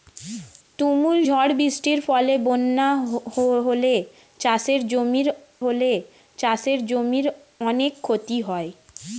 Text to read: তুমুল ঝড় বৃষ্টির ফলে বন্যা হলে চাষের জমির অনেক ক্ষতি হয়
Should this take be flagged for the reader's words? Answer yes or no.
yes